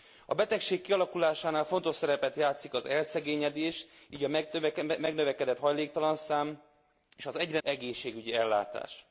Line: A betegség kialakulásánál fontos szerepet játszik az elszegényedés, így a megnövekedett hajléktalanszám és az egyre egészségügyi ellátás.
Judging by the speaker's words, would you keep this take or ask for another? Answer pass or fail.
pass